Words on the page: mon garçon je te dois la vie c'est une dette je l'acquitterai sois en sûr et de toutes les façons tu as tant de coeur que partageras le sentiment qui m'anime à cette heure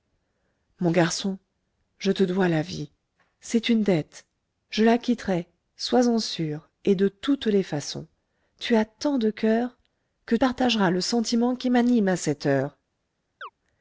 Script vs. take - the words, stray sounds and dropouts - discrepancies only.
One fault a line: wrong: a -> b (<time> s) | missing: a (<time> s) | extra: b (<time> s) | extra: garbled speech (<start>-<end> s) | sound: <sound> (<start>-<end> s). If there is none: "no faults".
sound: chirp (13.4-13.5 s)